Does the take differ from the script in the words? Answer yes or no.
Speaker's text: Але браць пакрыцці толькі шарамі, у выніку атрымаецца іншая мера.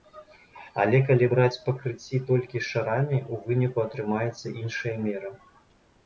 yes